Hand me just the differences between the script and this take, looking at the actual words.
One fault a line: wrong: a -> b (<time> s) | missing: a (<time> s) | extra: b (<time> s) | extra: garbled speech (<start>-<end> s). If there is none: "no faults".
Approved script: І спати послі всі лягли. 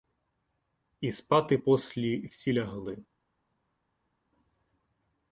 no faults